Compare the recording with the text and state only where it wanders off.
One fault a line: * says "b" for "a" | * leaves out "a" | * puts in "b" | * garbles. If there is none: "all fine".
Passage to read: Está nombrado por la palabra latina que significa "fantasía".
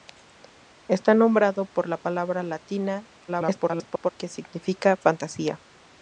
* garbles